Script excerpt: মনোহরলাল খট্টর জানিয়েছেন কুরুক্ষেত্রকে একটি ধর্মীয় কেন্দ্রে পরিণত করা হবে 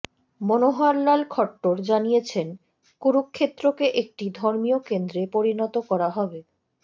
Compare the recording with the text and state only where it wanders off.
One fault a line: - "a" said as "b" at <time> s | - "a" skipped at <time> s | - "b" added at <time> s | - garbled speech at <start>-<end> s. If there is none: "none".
none